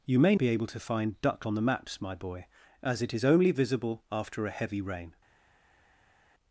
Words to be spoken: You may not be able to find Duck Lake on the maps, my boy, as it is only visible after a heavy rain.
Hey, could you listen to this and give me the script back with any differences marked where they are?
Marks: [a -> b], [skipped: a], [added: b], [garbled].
You may [skipped: not] be able to find Duck [skipped: Lake] on the maps, my boy, as it is only visible after a heavy rain.